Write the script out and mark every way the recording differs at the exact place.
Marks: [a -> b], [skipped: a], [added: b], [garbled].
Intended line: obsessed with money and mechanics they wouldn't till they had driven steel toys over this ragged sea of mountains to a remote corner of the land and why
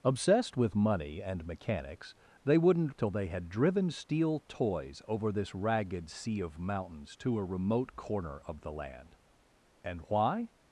obsessed with money and mechanics they wouldn't till they had driven steel toys over this ragged sea of mountains to a remote corner of the land and why